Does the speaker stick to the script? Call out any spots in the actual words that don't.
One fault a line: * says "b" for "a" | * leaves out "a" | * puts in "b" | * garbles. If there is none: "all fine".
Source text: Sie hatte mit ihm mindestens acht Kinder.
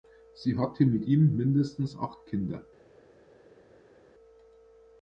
all fine